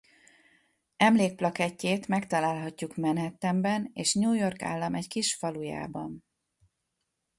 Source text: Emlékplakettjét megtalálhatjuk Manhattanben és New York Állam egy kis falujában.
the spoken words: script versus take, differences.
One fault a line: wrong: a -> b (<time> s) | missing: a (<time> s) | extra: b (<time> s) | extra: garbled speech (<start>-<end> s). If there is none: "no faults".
no faults